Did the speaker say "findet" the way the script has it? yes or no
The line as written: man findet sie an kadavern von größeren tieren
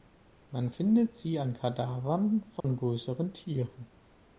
yes